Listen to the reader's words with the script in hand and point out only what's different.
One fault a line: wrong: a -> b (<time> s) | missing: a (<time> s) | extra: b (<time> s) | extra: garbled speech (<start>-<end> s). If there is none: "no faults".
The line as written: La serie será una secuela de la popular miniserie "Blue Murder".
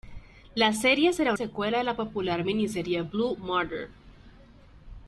missing: una (1.3 s)